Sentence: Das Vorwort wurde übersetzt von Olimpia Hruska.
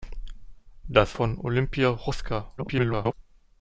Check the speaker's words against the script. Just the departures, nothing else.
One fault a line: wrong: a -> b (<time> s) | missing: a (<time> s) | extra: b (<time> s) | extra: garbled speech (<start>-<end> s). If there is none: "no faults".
missing: Vorwort wurde übersetzt (1.1 s)
extra: garbled speech (2.6-3.1 s)